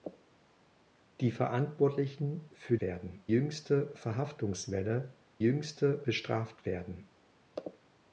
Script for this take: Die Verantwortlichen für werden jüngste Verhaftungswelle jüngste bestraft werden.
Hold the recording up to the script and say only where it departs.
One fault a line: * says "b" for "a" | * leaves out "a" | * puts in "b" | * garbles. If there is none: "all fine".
all fine